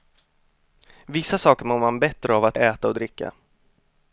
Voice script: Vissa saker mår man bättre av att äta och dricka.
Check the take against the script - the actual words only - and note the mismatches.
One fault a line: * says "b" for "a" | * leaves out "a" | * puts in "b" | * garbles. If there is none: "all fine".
all fine